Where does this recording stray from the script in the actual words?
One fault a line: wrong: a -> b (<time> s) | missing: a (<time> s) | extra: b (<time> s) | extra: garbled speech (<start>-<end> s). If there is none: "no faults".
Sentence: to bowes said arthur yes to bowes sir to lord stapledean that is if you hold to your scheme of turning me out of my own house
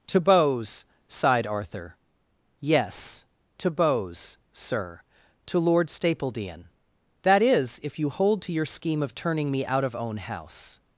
wrong: said -> sighed (1.1 s)
missing: my (9.9 s)